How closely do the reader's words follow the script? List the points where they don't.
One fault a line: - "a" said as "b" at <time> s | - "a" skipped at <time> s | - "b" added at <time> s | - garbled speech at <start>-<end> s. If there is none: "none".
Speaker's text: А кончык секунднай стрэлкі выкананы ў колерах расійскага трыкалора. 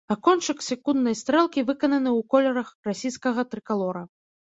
none